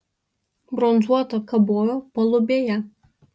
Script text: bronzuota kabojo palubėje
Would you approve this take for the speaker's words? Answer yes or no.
yes